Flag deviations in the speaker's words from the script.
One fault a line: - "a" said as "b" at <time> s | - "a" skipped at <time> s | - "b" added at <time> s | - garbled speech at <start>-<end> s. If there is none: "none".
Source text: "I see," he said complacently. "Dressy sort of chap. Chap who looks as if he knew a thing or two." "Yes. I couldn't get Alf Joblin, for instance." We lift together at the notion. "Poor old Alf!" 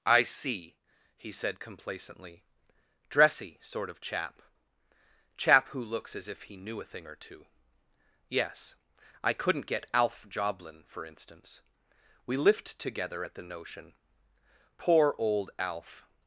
none